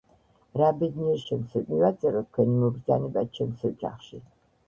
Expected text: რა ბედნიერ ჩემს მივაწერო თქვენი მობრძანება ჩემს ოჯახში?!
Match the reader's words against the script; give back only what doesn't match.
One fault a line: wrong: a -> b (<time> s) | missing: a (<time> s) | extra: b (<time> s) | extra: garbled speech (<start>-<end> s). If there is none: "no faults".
no faults